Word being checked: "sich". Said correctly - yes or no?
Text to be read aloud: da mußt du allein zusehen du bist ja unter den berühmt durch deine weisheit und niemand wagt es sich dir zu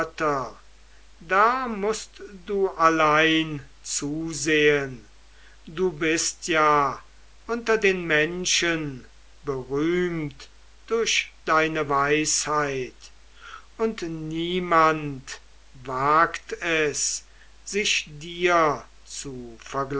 yes